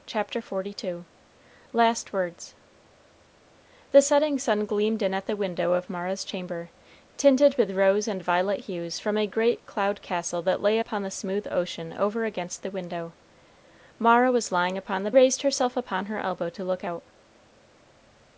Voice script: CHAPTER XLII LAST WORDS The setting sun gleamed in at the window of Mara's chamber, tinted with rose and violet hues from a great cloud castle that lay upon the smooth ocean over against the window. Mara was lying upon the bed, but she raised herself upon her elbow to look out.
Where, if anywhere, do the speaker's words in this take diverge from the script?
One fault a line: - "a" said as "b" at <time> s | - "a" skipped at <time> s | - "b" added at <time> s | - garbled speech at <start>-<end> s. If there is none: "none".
- "bed but she" skipped at 15.1 s